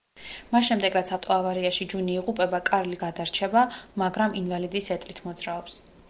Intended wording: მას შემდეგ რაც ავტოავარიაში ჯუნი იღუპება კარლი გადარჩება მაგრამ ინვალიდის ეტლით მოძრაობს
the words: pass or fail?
pass